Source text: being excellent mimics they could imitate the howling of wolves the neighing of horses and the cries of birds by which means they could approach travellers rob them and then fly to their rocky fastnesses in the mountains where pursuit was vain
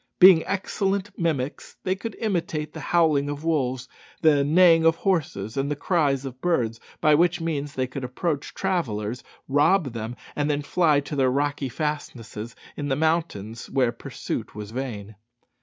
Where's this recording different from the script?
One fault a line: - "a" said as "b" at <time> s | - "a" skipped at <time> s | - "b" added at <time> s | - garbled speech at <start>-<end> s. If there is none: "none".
none